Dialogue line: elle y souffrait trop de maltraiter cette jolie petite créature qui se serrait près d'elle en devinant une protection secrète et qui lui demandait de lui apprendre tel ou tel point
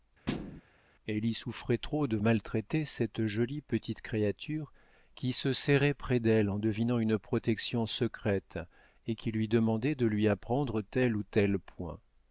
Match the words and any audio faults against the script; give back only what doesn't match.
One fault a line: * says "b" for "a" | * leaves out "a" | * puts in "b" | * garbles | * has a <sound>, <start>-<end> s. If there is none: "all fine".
* has a thud, 0.3-0.6 s